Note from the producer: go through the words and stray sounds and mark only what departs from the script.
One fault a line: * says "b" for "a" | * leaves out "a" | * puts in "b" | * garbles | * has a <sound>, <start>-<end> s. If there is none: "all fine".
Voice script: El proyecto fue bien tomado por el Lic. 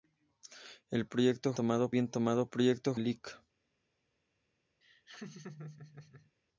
* says "tomado" for "fue"
* says "proyecto" for "por"
* has a laugh, 4.8-6.3 s